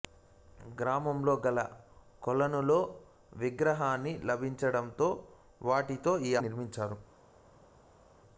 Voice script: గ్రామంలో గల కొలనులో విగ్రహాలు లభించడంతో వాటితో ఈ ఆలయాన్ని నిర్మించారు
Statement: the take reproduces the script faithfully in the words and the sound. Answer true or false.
false